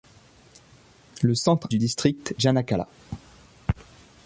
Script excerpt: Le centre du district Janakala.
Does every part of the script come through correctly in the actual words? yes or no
yes